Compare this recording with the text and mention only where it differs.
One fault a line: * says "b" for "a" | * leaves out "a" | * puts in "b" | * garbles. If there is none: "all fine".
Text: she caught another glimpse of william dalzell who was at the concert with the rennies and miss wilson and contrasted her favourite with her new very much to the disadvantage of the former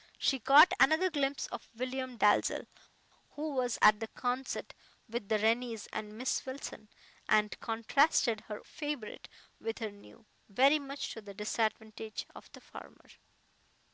all fine